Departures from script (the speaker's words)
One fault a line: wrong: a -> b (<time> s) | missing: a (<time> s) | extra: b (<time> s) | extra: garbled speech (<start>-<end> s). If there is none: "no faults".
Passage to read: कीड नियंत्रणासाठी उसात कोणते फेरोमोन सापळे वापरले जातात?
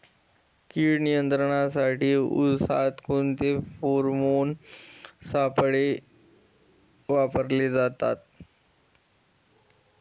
no faults